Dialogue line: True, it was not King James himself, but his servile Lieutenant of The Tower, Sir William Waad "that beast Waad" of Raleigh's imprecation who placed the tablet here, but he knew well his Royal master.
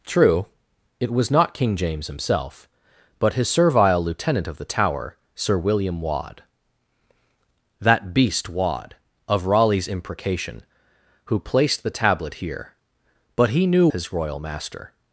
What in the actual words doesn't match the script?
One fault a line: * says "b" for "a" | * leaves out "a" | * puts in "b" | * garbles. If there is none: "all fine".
* leaves out "well"